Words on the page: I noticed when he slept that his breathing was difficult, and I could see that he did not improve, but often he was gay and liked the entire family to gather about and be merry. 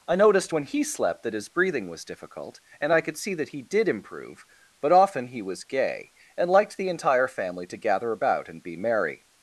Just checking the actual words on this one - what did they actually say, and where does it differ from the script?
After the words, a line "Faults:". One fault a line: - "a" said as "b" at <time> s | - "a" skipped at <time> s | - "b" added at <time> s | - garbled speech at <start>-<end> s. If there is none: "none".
I noticed when he slept that his breathing was difficult, and I could see that he did improve, but often he was gay and liked the entire family to gather about and be merry.
Faults:
- "not" skipped at 3.9 s